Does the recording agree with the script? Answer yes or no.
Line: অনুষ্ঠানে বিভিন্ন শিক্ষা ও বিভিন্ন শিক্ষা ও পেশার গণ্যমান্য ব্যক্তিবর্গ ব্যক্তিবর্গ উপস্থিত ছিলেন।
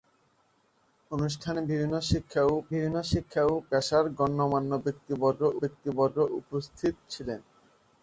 yes